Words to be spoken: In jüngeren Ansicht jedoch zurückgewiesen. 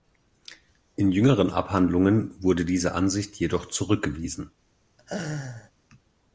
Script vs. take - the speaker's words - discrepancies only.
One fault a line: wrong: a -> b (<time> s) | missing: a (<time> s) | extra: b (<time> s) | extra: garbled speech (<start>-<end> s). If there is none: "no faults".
extra: Abhandlungen wurde diese (1.5 s)